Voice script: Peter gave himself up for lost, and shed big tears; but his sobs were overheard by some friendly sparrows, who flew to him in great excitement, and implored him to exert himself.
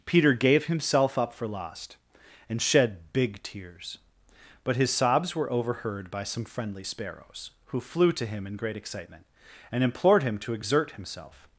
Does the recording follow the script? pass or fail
pass